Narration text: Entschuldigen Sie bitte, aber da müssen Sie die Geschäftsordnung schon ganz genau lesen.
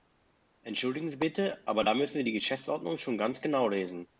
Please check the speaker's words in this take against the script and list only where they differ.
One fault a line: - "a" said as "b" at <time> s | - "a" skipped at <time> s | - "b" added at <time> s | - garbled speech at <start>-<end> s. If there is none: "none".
none